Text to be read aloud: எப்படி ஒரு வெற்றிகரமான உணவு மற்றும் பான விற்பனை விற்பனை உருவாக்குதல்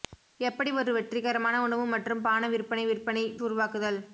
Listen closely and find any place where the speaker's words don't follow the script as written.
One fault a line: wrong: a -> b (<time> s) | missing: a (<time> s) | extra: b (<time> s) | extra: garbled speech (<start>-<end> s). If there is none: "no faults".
no faults